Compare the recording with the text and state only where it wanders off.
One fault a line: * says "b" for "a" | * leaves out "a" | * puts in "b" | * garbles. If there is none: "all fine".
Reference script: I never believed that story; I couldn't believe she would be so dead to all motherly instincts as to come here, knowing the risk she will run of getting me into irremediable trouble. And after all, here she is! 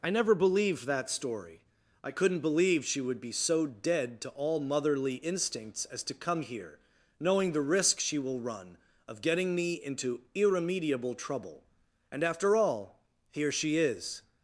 all fine